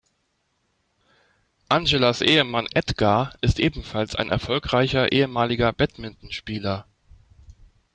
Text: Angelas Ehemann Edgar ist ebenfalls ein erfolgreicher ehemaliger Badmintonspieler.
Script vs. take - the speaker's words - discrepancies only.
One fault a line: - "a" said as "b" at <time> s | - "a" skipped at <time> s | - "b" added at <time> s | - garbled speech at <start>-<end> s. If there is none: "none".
none